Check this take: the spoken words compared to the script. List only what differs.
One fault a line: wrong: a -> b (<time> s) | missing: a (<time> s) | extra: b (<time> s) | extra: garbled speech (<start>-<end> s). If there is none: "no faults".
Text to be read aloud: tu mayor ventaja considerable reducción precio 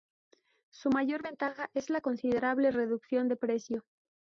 wrong: tu -> su (0.7 s)
extra: es la (1.7 s)
extra: de (3.3 s)